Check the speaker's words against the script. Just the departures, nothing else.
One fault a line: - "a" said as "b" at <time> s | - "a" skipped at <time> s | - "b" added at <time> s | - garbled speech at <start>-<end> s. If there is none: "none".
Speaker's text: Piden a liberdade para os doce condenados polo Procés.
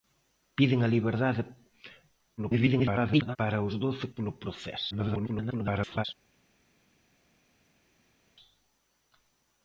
- garbled speech at 2.4-3.4 s
- "condenados" skipped at 4.1 s
- garbled speech at 4.9-6.0 s